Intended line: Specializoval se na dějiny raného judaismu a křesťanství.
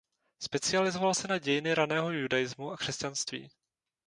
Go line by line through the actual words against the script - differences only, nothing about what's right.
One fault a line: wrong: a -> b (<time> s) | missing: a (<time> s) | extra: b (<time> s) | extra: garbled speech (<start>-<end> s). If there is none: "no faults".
no faults